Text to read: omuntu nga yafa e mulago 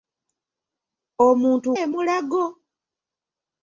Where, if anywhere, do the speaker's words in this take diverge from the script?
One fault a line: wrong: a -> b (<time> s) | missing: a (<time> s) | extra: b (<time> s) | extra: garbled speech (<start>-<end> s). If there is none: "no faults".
missing: nga yafa (1.7 s)